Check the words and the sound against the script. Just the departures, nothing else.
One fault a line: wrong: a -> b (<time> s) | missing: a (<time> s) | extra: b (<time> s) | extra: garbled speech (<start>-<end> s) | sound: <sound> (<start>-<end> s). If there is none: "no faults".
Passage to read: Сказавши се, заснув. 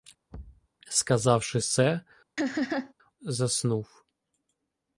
sound: thud (0.3-0.7 s)
sound: laugh (2.4-2.9 s)